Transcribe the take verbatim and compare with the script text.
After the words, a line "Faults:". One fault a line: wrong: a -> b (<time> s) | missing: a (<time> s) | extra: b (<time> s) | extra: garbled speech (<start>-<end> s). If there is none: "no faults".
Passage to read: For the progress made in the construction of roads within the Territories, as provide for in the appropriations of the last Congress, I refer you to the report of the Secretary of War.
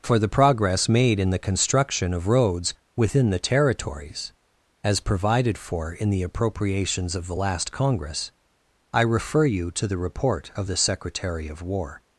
For the progress made in the construction of roads within the Territories, as provided for in the appropriations of the last Congress, I refer you to the report of the Secretary of War.
Faults:
wrong: provide -> provided (5.0 s)